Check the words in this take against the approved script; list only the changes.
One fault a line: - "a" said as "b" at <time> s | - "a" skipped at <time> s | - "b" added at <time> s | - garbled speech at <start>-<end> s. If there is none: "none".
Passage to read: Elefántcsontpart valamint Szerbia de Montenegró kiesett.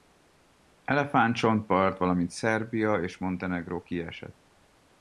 - "de" said as "és" at 3.0 s